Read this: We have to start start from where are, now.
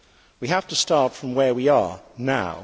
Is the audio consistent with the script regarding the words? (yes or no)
no